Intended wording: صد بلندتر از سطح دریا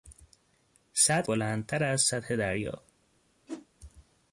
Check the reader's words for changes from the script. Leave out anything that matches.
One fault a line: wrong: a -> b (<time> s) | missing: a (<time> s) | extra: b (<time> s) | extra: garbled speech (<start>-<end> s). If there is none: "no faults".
no faults